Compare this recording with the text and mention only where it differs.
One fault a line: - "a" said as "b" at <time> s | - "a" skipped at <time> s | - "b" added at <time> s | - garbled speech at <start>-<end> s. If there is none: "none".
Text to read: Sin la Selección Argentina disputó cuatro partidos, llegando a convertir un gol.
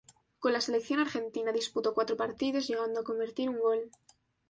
- "Sin" said as "Con" at 0.4 s